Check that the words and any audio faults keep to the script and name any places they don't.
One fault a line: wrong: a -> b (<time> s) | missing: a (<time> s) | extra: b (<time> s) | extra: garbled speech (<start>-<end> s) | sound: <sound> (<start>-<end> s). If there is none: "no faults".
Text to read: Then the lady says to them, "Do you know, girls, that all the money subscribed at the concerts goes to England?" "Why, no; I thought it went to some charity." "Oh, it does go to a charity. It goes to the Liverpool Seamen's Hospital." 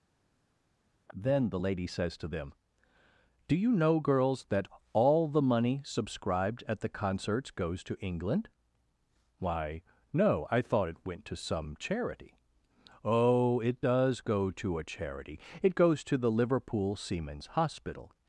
no faults